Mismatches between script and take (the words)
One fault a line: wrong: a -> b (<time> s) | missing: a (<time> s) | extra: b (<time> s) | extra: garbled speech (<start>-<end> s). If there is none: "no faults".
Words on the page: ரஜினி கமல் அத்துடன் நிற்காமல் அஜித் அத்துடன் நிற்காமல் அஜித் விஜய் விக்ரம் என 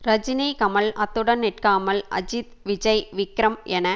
missing: அத்துடன் நிற்காமல் அஜித் (2.5 s)